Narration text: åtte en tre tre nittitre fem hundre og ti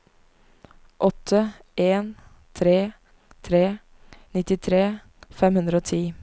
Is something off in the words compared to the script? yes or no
no